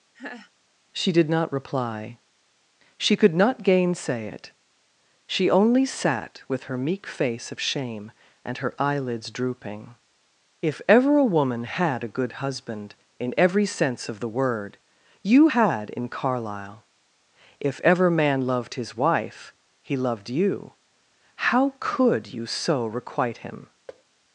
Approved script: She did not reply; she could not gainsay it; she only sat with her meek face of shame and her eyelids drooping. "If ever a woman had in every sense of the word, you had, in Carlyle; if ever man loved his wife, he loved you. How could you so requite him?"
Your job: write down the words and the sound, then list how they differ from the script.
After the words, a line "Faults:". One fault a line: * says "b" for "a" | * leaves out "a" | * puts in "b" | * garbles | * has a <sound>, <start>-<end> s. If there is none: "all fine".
She did not reply; she could not gainsay it; she only sat with her meek face of shame and her eyelids drooping. "If ever a woman had a good husband, in every sense of the word, you had, in Carlyle; if ever man loved his wife, he loved you. How could you so requite him?"
Faults:
* has a laugh, 0.1-0.5 s
* puts in "a good husband"
* has a thud, 23.9-24.0 s